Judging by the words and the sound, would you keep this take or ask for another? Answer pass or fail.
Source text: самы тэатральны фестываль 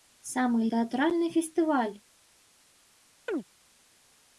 fail